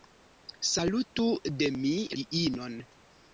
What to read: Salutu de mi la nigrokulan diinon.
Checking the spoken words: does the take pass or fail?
fail